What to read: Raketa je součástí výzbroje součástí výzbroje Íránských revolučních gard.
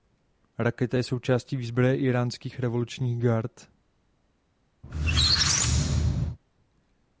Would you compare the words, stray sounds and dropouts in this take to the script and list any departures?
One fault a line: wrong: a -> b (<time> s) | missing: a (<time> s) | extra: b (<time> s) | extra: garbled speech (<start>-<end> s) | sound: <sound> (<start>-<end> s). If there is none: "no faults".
missing: součástí výzbroje (2.0 s)
sound: squeak (4.8-6.4 s)